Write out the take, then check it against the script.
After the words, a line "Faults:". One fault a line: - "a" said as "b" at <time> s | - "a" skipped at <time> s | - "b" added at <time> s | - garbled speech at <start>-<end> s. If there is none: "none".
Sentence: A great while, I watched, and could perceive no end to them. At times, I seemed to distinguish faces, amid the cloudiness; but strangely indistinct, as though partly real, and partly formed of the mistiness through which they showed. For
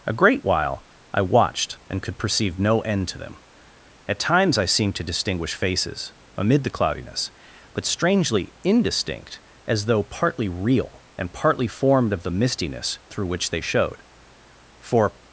A great while, I watched, and could perceive no end to them. At times, I seemed to distinguish faces, amid the cloudiness; but strangely indistinct, as though partly real, and partly formed of the mistiness through which they showed. For
Faults:
none